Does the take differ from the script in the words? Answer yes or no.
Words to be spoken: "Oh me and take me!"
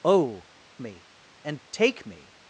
no